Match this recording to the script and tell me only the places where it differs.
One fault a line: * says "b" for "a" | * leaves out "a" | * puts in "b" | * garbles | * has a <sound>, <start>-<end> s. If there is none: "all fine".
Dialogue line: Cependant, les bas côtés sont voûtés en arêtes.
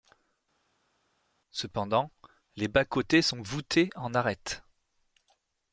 all fine